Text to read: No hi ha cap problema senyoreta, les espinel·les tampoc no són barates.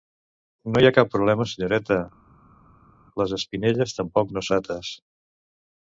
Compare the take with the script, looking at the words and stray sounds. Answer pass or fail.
fail